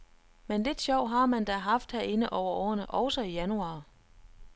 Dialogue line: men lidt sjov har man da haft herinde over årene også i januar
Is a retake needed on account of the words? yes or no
no